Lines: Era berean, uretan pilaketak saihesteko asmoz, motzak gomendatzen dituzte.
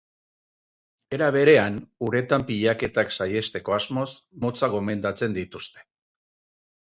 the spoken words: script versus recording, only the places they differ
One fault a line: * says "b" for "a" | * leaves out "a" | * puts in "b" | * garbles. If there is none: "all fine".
all fine